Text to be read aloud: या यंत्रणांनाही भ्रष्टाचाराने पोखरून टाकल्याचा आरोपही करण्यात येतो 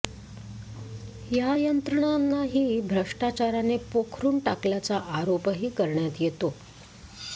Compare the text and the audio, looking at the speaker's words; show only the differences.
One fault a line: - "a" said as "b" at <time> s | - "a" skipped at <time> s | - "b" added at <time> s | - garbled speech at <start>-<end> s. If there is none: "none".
none